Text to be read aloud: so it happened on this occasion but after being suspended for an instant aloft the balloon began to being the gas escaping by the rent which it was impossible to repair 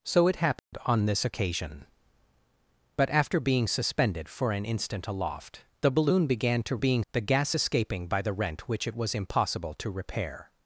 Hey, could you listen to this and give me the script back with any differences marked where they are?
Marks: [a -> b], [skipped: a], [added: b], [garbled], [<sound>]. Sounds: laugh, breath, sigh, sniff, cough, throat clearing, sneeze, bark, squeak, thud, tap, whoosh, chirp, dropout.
so it happened [dropout] on this occasion but after being suspended for an instant aloft the balloon began to being the gas escaping by the rent which it was impossible to repair